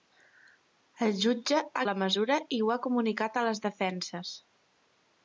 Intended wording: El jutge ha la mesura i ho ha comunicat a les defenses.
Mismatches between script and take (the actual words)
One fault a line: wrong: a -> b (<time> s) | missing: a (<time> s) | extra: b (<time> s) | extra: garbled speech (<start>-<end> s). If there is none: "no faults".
no faults